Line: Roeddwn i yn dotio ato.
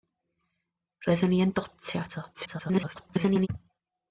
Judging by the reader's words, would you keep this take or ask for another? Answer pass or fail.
fail